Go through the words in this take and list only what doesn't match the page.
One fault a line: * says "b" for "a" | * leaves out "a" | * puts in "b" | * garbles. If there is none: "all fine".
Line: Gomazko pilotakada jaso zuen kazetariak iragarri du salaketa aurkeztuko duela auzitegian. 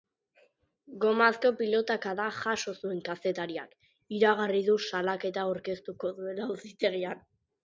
all fine